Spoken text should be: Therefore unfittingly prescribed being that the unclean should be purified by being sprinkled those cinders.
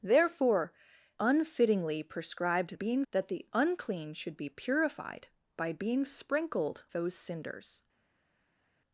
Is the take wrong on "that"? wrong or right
right